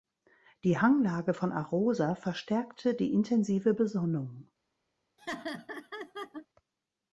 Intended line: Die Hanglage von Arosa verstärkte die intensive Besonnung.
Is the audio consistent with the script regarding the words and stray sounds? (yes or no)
no